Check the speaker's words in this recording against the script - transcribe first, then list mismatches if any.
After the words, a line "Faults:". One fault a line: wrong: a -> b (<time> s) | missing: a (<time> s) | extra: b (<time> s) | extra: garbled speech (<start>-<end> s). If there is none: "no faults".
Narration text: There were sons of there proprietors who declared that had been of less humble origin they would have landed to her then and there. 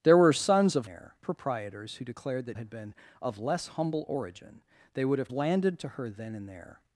There were sons of there proprietors who declared that had been of less humble origin they would have landed to her then and there.
Faults:
no faults